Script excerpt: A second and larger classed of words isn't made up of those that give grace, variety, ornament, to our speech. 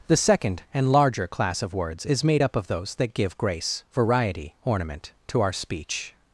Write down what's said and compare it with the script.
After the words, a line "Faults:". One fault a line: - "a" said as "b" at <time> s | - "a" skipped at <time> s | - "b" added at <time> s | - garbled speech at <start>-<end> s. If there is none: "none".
The second and larger class of words is made up of those that give grace, variety, ornament, to our speech.
Faults:
- "A" said as "The" at 0.1 s
- "classed" said as "class" at 1.3 s
- "isn't" said as "is" at 2.0 s